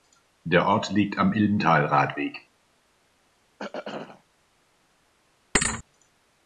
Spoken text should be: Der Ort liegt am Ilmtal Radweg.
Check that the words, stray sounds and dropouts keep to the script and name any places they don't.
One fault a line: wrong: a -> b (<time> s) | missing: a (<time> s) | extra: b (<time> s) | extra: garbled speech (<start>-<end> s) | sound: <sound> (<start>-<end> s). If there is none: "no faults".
sound: throat clearing (3.6-4.2 s)
sound: thud (5.5-5.8 s)